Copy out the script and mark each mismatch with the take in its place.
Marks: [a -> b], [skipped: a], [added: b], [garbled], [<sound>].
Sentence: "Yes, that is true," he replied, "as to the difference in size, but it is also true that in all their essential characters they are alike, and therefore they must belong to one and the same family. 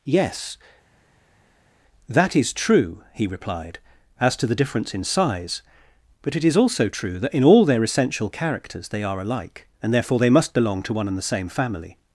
"Yes, that is true," he replied, "as to the difference in size, but it is also true that in all their essential characters they are alike, and therefore they must belong to one and the same family.